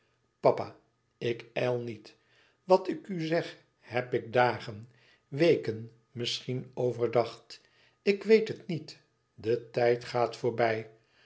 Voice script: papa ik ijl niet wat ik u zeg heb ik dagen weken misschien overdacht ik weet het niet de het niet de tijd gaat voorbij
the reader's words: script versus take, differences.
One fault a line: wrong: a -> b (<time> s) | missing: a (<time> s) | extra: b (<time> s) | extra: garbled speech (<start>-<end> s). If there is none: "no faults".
missing: het niet de (9.7 s)